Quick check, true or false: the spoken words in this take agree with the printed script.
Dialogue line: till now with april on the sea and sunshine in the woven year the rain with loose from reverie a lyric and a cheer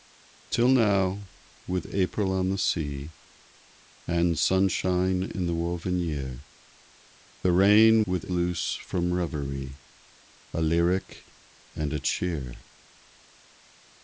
true